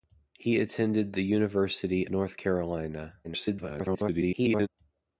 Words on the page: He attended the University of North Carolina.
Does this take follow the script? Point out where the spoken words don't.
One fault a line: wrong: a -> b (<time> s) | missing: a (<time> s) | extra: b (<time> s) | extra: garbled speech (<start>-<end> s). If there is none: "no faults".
missing: of (2.1 s)
extra: garbled speech (3.2-4.7 s)